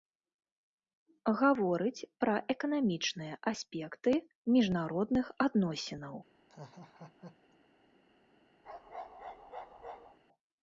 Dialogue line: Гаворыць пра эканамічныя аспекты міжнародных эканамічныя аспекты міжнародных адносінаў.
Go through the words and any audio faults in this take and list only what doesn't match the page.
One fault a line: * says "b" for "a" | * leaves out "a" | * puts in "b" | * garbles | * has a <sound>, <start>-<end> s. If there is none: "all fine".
* leaves out "эканамічныя аспекты міжнародных"
* has a laugh, 6.5-7.6 s
* has a bark, 8.6-10.2 s